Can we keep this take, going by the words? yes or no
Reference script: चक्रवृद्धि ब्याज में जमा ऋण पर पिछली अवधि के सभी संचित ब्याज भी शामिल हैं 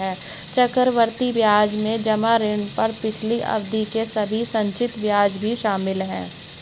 yes